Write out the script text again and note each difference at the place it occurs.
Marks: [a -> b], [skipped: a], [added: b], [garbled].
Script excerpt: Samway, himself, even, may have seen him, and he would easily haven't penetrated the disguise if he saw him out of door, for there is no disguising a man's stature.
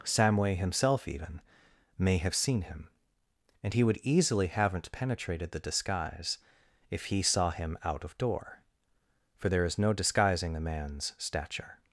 Samway, himself, even, may have seen him, and he would easily haven't penetrated the disguise if he saw him out of door, for there is no disguising a man's stature.